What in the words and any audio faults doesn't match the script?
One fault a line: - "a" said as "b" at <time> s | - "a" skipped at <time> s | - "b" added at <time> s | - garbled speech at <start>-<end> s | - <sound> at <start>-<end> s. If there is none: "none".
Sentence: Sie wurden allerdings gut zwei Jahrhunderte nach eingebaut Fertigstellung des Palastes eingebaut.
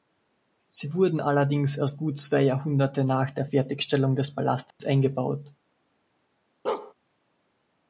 - "erst" added at 1.8 s
- "eingebaut" said as "der" at 3.3 s
- dropout at 4.7-4.8 s
- bark at 6.6-6.9 s